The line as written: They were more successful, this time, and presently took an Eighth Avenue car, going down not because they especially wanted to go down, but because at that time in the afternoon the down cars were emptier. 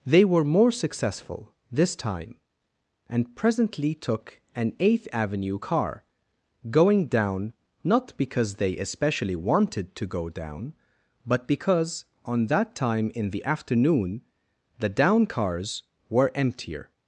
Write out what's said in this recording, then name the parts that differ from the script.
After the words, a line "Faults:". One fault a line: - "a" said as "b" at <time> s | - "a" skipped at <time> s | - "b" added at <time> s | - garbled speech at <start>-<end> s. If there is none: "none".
They were more successful, this time, and presently took an Eighth Avenue car, going down not because they especially wanted to go down, but because on that time in the afternoon the down cars were emptier.
Faults:
- "at" said as "on" at 12.2 s